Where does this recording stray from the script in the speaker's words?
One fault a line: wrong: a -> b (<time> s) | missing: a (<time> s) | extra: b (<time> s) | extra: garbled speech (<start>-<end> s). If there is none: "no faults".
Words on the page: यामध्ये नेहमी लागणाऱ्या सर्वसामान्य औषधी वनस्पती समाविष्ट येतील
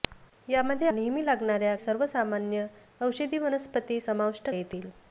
no faults